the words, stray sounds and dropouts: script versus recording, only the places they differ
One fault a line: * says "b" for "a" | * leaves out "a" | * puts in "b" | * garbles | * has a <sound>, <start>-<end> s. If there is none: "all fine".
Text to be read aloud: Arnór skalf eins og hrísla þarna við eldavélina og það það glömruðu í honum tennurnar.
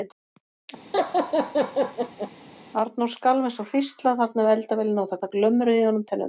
* has a laugh, 0.9-2.3 s